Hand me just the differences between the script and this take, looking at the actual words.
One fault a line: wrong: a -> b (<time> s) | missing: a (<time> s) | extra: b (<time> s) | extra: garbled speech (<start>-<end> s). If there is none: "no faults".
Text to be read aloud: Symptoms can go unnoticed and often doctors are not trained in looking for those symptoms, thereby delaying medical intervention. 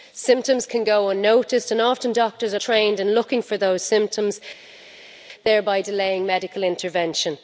missing: not (2.6 s)